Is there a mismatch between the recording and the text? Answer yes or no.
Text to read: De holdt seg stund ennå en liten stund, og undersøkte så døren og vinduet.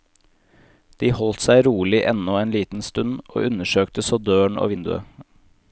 yes